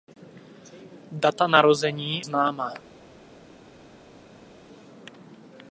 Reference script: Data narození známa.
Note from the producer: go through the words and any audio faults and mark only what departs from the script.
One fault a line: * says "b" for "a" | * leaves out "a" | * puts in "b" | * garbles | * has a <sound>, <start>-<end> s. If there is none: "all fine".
all fine